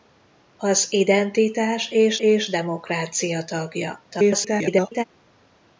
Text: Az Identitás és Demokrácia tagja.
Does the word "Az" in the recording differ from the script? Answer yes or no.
no